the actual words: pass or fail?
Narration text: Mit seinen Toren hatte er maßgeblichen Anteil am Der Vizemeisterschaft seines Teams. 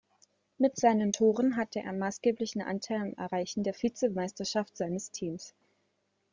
fail